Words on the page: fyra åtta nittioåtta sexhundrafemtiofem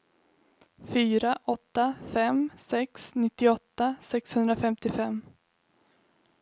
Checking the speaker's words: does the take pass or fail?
fail